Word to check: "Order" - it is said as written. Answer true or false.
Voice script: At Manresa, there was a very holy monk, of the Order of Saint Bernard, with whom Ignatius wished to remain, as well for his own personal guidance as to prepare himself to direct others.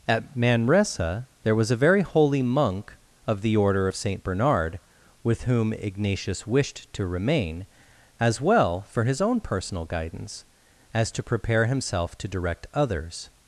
true